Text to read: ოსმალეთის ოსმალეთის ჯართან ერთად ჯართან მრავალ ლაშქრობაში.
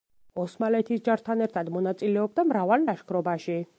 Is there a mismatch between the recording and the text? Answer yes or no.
yes